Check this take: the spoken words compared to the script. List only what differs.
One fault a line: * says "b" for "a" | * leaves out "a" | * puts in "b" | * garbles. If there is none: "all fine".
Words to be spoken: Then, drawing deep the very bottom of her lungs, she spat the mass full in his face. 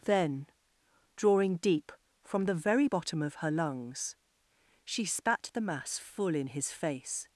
* puts in "from"